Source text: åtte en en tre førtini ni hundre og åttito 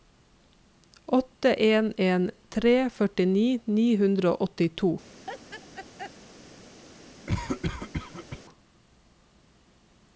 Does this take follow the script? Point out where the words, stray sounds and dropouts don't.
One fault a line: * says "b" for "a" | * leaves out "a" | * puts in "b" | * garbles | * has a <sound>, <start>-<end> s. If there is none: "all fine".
* has a laugh, 5.2-6.1 s
* has a cough, 7.3-8.4 s